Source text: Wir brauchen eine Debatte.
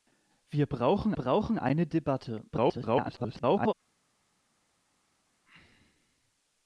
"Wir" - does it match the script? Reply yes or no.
yes